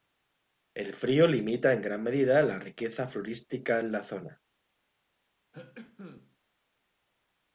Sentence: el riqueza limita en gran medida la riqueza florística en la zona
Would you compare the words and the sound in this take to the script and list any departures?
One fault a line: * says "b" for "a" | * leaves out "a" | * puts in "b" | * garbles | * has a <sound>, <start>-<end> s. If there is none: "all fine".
* says "frío" for "riqueza"
* has a cough, 5.5-6.4 s